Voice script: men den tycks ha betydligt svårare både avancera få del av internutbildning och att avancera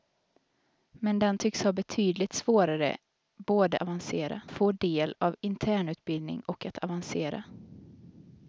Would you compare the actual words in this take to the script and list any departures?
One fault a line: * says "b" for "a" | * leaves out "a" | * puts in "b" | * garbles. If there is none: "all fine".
all fine